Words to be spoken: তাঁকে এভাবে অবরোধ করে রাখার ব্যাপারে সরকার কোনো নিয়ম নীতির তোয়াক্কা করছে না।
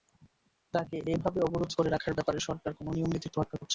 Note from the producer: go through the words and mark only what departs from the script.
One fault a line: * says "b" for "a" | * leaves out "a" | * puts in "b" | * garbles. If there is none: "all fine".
all fine